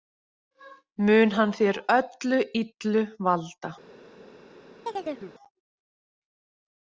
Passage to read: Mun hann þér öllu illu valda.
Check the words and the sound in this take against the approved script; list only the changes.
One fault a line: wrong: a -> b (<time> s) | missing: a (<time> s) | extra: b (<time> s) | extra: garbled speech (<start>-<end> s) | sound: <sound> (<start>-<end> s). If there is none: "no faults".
sound: chirp (4.9-5.3 s)